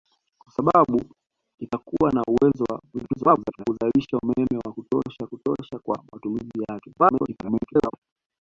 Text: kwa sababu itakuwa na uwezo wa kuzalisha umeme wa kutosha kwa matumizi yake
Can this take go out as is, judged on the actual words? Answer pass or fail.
fail